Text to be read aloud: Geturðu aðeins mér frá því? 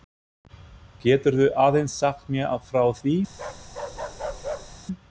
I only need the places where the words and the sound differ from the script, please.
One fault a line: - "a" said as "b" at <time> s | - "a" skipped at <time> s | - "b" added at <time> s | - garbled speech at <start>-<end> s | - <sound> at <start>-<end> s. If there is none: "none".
- "sagt" added at 2.0 s
- bark at 3.3-4.8 s